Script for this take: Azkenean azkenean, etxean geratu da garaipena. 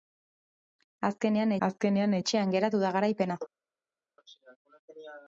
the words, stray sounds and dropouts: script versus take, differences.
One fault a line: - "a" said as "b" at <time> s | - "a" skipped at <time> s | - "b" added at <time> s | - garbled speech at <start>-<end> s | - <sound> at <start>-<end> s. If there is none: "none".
none